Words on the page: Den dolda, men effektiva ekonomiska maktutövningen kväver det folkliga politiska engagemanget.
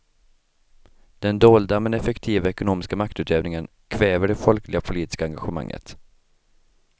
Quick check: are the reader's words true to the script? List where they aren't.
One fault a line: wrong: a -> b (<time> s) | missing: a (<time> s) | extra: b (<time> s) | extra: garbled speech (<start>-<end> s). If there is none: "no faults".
no faults